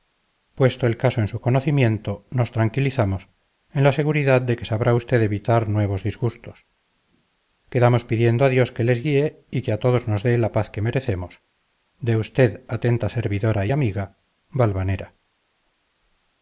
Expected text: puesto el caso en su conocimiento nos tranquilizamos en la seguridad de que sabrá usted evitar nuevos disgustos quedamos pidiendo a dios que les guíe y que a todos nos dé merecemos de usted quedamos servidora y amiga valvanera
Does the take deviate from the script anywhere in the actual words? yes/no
yes